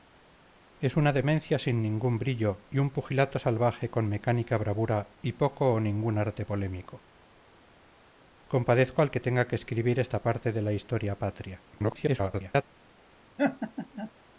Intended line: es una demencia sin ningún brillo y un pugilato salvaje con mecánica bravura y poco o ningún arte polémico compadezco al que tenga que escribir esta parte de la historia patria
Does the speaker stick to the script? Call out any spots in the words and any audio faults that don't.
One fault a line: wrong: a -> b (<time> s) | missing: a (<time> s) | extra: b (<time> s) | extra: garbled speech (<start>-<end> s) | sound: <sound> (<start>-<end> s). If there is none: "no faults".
extra: garbled speech (11.7-12.6 s)
sound: laugh (13.4-14.1 s)